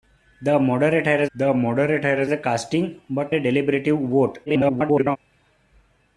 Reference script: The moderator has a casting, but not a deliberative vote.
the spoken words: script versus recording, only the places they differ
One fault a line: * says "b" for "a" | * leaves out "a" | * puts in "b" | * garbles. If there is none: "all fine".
* puts in "the moderator has"
* leaves out "not"
* garbles